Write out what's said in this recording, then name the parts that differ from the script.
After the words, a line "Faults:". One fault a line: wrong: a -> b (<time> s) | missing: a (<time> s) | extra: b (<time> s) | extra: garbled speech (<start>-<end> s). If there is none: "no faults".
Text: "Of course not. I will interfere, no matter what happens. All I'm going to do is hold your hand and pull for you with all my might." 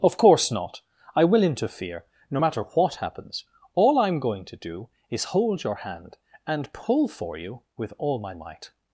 "Of course not. I will interfere, no matter what happens. All I'm going to do is hold your hand and pull for you with all my might."
Faults:
no faults